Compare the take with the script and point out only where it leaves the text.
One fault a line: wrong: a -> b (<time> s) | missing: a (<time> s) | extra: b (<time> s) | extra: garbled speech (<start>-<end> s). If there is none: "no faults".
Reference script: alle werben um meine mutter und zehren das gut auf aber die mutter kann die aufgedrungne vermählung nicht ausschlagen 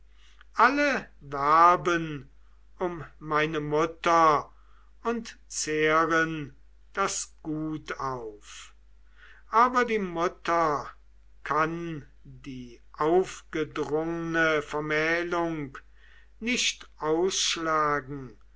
no faults